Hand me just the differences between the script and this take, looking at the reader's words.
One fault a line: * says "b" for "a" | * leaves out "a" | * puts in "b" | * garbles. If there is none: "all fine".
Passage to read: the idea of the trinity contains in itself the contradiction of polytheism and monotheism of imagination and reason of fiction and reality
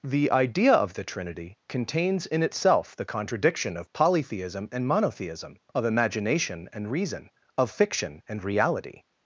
all fine